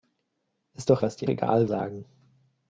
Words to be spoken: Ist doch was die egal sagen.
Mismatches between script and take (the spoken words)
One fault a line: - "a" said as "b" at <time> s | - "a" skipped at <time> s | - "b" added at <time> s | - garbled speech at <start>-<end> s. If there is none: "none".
none